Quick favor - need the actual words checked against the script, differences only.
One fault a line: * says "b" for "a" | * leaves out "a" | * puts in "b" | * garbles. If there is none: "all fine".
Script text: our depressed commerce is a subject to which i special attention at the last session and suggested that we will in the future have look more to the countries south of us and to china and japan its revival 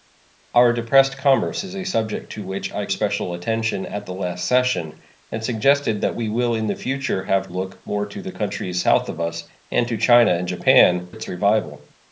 all fine